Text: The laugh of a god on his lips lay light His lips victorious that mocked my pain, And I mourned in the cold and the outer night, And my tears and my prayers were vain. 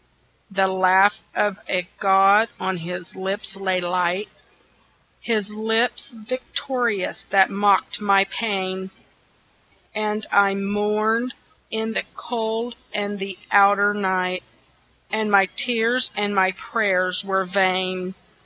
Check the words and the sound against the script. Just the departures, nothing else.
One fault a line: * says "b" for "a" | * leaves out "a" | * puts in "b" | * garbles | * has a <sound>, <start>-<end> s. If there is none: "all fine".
all fine